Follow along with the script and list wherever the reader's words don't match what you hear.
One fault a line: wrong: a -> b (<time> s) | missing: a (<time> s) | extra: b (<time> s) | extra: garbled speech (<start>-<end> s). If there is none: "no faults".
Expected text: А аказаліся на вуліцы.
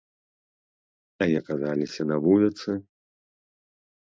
no faults